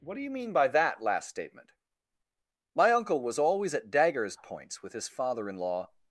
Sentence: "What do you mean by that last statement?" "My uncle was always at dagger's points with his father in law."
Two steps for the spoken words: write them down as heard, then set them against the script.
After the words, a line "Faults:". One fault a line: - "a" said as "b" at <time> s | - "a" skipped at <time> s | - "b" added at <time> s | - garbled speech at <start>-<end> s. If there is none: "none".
"What do you mean by that last statement?" "My uncle was always at dagger's points with his father in law."
Faults:
none